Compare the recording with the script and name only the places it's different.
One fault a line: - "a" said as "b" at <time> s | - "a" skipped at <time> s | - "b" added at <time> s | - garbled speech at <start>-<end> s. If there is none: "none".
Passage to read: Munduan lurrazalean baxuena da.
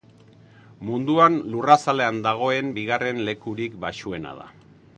- "dagoen bigarren lekurik" added at 2.3 s